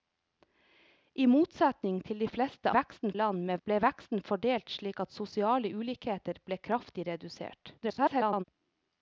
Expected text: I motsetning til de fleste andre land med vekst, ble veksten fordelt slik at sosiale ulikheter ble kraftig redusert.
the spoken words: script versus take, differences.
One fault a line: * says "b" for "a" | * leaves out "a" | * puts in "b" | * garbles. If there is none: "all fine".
* says "veksten" for "andre"
* leaves out "vekst"
* garbles